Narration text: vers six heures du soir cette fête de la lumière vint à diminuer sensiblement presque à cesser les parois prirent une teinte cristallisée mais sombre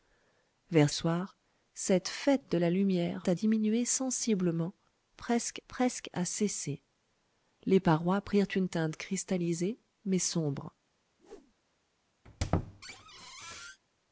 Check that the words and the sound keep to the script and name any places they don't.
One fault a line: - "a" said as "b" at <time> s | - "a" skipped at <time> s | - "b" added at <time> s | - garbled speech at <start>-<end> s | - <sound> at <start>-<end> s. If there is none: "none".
- "six heures du" skipped at 0.9 s
- "vint" skipped at 3.3 s
- "presque" added at 5.7 s
- whoosh at 11.2-11.5 s
- squeak at 12.2-13.8 s